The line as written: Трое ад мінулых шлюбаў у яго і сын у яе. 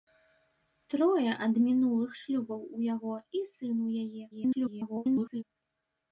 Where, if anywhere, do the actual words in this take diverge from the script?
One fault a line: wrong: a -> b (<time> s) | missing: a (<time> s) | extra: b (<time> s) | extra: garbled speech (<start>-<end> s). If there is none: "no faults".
extra: garbled speech (4.3-5.4 s)